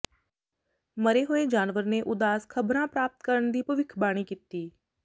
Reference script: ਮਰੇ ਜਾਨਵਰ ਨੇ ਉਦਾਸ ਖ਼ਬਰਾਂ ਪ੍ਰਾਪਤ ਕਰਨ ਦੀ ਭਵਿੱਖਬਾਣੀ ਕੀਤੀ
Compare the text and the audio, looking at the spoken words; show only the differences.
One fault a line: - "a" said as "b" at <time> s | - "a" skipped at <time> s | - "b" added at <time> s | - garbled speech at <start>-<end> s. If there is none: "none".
- "ਹੋਏ" added at 1.2 s